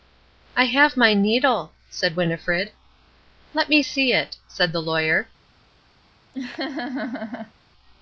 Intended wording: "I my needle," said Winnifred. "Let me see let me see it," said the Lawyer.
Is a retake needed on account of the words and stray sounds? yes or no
yes